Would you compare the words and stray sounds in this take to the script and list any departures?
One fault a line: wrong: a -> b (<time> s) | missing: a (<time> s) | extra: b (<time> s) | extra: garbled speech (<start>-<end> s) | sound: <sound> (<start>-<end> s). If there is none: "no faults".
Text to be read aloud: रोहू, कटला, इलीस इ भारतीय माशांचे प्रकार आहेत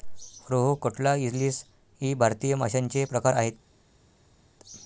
no faults